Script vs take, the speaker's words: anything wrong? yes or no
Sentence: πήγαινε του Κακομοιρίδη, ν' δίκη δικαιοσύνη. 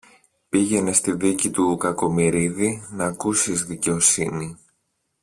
yes